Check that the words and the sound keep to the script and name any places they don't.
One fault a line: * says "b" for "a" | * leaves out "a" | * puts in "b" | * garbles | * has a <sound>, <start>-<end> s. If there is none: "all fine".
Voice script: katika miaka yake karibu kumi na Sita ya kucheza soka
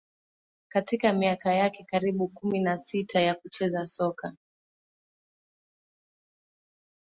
all fine